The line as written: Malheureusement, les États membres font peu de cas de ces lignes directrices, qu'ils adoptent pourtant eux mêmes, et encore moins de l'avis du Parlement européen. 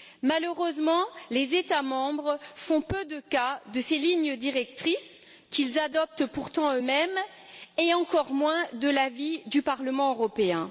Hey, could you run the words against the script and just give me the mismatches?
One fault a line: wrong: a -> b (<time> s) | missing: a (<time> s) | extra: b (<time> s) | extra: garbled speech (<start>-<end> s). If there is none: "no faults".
no faults